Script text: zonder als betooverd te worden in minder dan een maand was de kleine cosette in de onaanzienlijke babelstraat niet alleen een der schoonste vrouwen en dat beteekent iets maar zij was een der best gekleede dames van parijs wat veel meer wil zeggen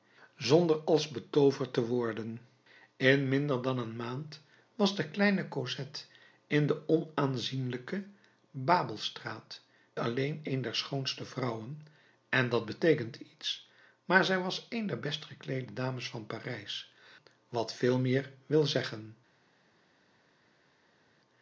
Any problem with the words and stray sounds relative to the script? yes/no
yes